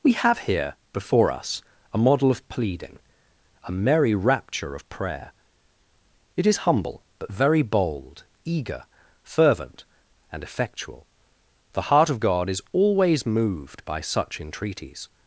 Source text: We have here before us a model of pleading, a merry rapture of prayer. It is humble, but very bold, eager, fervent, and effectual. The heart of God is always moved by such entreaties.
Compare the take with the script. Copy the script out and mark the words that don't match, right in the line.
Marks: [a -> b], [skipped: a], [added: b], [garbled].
We have here before us a model of pleading, a merry rapture of prayer. It is humble, but very bold, eager, fervent, and effectual. The heart of God is always moved by such entreaties.